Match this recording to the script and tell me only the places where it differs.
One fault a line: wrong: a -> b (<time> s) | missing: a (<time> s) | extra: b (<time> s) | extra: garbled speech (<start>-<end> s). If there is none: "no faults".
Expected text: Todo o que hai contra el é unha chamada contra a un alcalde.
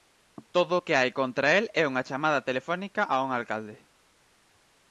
wrong: contra -> telefónica (2.5 s)